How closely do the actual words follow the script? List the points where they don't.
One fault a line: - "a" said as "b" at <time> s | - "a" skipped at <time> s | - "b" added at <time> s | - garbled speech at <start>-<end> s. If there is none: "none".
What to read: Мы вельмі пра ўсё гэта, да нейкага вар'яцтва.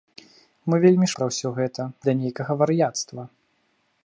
none